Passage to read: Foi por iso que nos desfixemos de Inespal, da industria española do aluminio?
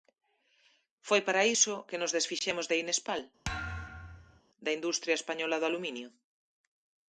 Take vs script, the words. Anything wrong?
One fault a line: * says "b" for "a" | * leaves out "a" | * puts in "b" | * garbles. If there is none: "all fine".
* says "para" for "por"